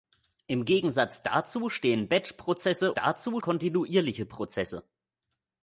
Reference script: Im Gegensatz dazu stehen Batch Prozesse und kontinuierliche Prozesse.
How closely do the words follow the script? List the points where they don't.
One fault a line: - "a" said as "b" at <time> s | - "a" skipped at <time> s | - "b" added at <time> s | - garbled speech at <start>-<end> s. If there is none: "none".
- "und" said as "dazu" at 2.9 s